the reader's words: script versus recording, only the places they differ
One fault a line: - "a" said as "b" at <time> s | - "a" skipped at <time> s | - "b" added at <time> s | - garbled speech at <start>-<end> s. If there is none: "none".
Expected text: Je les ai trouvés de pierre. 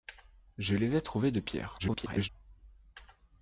- garbled speech at 1.8-2.3 s